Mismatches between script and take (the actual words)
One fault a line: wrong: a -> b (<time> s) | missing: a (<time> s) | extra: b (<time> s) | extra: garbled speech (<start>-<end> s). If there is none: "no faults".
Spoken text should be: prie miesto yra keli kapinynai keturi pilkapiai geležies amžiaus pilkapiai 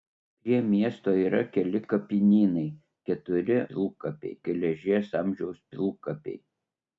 no faults